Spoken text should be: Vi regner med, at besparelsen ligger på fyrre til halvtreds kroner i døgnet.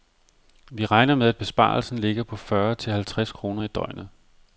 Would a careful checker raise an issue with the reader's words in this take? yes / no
no